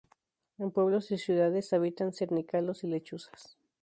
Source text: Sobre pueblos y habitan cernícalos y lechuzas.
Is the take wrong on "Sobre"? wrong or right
wrong